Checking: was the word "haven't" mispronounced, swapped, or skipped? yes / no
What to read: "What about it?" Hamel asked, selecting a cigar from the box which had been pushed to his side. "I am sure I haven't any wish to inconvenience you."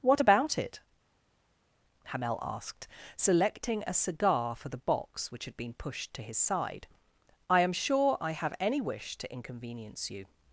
yes